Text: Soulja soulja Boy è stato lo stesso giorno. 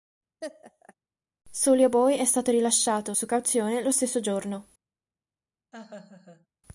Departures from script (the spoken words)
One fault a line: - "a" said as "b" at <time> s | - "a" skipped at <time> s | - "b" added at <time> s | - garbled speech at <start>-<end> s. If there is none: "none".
- "soulja" skipped at 1.9 s
- "rilasciato su cauzione" added at 2.5 s